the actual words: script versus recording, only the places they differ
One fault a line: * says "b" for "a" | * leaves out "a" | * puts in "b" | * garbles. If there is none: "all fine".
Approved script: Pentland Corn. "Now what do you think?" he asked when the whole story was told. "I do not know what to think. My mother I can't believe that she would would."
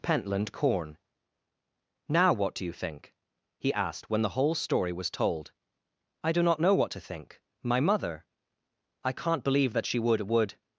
all fine